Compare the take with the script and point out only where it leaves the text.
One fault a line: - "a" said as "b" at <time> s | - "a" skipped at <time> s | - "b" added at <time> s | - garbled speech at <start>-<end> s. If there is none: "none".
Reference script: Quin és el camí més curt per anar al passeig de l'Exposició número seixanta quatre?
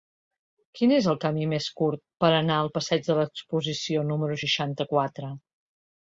none